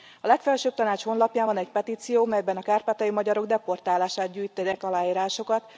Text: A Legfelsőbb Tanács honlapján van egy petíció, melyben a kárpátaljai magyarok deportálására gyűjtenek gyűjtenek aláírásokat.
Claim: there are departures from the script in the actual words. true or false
true